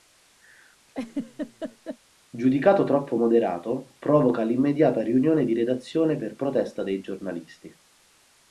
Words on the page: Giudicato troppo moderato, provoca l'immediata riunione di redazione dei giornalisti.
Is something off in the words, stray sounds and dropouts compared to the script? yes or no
yes